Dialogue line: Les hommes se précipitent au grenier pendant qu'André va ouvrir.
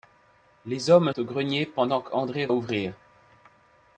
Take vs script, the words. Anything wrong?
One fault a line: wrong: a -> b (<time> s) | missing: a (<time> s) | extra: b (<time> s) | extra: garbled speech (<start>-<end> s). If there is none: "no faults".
missing: se précipitent (1.1 s)
missing: va (2.5 s)